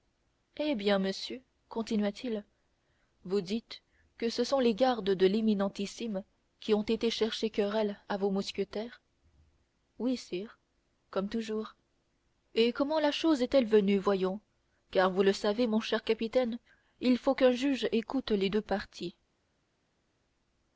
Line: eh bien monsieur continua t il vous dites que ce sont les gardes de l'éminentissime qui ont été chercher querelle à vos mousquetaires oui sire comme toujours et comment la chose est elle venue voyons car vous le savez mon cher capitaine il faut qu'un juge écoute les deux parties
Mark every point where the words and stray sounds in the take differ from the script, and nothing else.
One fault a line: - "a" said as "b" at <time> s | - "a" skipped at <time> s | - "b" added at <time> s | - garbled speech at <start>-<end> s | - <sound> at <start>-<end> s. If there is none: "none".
none